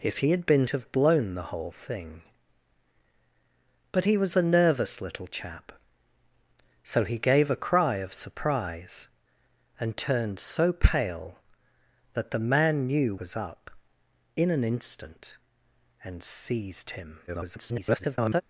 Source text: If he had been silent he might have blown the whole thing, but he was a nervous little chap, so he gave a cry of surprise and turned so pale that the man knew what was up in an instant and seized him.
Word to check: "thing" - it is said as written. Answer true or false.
true